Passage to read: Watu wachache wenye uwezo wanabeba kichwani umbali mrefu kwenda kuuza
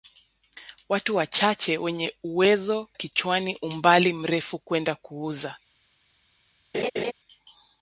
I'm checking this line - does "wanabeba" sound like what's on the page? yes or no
no